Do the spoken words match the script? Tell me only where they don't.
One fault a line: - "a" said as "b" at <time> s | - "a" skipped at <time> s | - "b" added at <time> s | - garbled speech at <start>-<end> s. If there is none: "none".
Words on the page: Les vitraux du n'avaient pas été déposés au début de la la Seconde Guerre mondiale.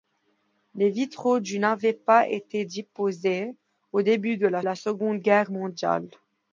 none